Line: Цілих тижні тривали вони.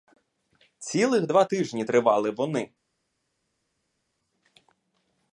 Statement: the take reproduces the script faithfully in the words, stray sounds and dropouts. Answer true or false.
false